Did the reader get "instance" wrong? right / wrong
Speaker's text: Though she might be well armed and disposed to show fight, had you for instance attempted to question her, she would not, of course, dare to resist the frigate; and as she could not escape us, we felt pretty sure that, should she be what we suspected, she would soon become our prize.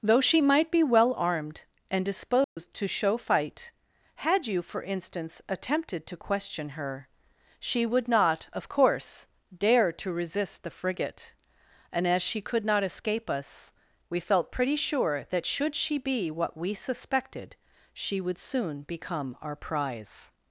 right